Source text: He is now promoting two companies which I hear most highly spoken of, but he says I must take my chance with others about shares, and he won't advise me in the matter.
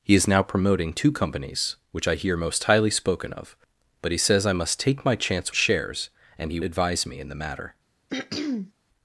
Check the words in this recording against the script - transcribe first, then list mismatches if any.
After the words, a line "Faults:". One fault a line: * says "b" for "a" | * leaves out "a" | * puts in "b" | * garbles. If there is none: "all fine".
He is now promoting two companies which I hear most highly spoken of, but he says I must take my chance shares, and he advise me in the matter.
Faults:
* leaves out "with others about"
* leaves out "won't"